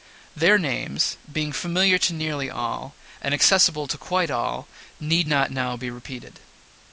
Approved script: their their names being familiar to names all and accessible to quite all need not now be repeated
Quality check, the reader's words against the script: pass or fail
fail